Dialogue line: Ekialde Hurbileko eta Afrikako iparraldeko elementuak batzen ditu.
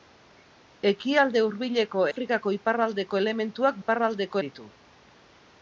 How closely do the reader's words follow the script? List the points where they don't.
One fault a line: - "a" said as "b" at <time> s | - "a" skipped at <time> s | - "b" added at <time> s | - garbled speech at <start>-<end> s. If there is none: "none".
- "eta" skipped at 2.0 s
- "batzen" said as "iparraldeko" at 3.8 s